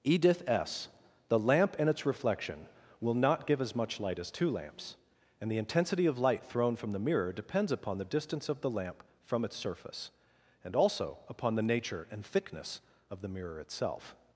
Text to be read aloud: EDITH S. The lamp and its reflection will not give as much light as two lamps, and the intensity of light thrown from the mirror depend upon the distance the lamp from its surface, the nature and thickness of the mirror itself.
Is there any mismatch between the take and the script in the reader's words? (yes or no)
yes